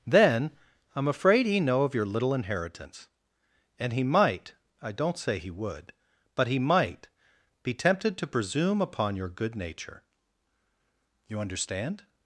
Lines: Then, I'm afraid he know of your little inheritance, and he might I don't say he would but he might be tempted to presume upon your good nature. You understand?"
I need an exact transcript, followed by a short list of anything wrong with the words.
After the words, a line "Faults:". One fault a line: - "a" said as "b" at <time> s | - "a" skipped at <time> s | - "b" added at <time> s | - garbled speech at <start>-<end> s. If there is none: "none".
Then, I'm afraid he know of your little inheritance, and he might I don't say he would but he might be tempted to presume upon your good nature. You understand?"
Faults:
none